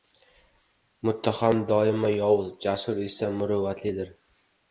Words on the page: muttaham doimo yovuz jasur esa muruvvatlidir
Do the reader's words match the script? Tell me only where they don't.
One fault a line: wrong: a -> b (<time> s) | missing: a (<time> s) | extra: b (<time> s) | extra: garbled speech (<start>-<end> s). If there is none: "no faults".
no faults